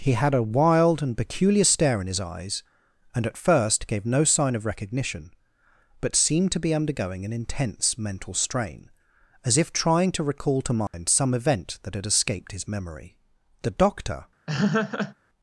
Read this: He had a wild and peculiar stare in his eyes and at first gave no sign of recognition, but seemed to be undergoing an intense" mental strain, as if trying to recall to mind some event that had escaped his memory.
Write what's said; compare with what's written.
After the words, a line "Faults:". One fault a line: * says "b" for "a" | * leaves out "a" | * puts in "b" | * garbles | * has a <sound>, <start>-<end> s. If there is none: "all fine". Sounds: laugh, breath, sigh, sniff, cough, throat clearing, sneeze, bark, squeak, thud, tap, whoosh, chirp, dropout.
He had a wild and peculiar stare in his eyes and at first gave no sign of recognition, but seemed to be undergoing an intense" mental strain, as if trying to recall to mind some event that had escaped his memory. The doctor
Faults:
* has a dropout, 10.9-10.9 s
* puts in "The doctor"
* has a laugh, 14.5-15.1 s